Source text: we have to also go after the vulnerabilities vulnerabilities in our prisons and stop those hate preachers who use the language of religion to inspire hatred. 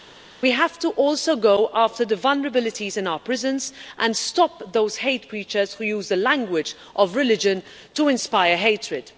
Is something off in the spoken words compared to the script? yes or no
yes